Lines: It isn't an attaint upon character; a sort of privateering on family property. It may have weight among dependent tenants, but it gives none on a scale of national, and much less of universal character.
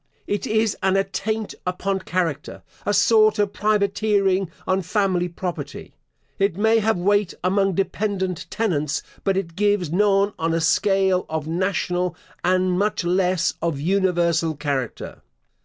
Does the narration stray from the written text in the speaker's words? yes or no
yes